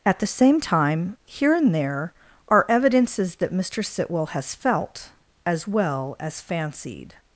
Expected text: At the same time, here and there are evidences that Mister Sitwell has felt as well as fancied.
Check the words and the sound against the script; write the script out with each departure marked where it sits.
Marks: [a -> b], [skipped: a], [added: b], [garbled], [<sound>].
At the same time, here and there are evidences that Mister Sitwell has felt as well as fancied.